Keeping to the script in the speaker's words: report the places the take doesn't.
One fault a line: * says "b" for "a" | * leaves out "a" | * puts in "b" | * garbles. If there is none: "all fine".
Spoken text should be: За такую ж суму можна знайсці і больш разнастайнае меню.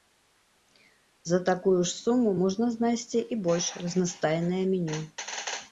all fine